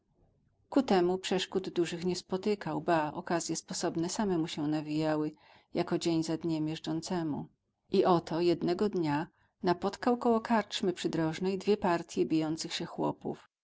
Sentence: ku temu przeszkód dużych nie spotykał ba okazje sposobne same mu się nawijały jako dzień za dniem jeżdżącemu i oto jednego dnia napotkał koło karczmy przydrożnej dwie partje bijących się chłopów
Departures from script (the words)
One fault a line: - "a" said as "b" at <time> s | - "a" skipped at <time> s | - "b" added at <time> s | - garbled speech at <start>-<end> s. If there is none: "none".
none